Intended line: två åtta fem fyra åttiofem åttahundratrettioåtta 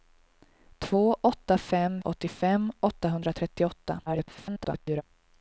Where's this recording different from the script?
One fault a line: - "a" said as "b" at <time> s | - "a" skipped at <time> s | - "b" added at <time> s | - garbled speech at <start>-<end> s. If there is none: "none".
- "fyra" skipped at 2.0 s
- garbled speech at 4.1-5.0 s